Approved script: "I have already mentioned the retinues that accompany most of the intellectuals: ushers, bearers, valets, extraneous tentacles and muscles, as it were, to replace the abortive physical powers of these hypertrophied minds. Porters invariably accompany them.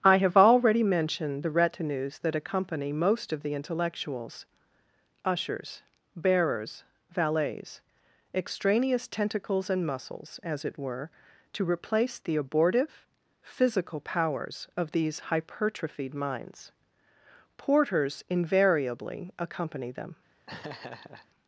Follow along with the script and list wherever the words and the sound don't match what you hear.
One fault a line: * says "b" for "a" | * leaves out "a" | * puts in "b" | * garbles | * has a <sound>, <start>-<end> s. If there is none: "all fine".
* has a laugh, 20.5-21.3 s